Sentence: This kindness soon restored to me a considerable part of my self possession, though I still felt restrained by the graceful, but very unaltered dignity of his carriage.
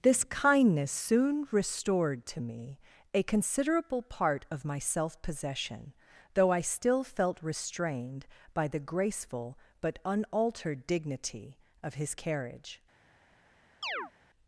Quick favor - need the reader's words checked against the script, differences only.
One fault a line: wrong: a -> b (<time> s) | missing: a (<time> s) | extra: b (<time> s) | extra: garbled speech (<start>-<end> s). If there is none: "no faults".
missing: very (10.0 s)